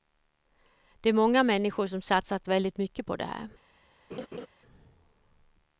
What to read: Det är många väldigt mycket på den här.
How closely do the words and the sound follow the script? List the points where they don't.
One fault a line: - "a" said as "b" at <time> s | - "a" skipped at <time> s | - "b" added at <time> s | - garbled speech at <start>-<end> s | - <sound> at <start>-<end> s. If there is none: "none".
- "människor som satsat" added at 1.4 s
- "den" said as "det" at 3.1 s
- laugh at 4.1-4.5 s